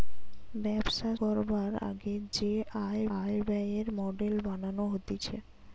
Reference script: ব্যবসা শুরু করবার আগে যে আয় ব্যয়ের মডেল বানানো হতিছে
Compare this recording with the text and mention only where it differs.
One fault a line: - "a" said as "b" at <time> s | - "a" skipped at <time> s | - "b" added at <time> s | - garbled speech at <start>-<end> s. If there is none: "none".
- "শুরু" skipped at 1.1 s
- "আয়" added at 3.2 s